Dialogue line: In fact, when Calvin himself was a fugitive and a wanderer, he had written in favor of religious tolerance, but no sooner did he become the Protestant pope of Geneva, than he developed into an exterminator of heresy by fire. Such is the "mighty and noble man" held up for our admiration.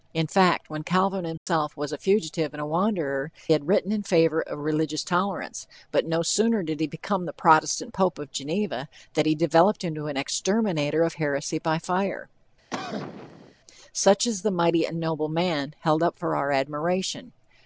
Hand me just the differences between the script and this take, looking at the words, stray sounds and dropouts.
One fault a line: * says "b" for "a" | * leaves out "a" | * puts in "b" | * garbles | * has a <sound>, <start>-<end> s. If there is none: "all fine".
* has a dropout, 1.4-1.5 s
* leaves out "he"
* has a cough, 12.7-13.5 s